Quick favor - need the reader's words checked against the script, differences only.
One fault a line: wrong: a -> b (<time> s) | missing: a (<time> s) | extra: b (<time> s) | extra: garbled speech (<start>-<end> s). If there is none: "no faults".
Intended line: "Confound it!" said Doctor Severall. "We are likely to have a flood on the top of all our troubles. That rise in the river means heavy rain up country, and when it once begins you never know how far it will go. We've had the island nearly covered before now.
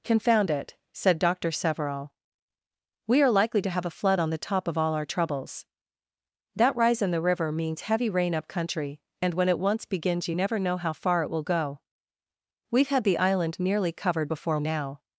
no faults